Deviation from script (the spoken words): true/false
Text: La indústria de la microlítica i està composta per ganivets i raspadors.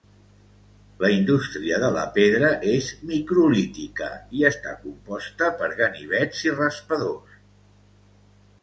true